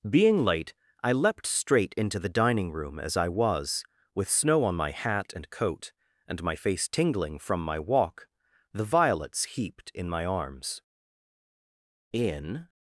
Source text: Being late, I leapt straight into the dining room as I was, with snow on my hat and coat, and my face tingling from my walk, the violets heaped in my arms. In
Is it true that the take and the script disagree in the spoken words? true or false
false